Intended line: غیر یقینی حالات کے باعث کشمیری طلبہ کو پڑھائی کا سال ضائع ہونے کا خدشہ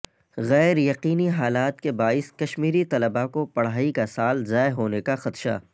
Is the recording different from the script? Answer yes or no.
no